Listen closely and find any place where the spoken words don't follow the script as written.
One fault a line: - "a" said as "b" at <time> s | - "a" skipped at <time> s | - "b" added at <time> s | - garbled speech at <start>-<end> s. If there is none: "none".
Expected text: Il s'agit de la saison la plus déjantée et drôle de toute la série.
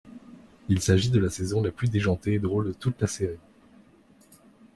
none